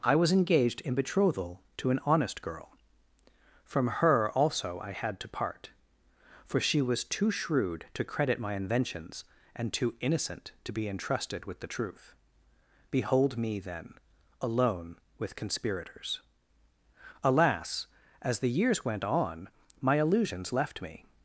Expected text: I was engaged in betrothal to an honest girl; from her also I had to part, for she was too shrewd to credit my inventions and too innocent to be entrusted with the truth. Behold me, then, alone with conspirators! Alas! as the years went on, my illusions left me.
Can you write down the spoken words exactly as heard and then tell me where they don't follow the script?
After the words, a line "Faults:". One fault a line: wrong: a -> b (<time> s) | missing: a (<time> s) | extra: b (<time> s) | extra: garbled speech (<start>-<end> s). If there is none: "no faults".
I was engaged in betrothal to an honest girl; from her also I had to part, for she was too shrewd to credit my inventions and too innocent to be entrusted with the truth. Behold me, then, alone with conspirators! Alas! as the years went on, my illusions left me.
Faults:
no faults